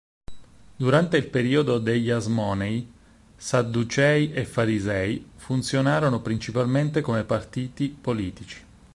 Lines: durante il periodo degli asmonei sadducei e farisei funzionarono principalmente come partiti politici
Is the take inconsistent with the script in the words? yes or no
no